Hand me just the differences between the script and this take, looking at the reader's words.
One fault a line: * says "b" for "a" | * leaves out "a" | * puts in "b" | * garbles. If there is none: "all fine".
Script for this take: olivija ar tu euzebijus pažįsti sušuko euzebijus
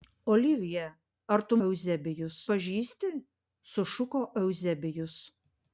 all fine